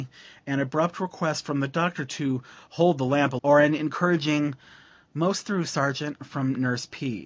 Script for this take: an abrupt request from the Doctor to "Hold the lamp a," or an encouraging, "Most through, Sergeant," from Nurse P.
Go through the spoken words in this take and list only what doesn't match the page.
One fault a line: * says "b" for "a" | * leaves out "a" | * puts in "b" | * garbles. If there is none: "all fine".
all fine